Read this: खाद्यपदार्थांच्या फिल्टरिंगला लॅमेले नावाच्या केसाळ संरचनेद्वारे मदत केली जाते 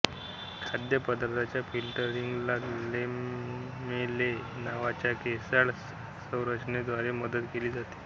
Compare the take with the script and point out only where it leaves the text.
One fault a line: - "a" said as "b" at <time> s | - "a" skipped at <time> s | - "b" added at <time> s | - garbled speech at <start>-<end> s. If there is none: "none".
none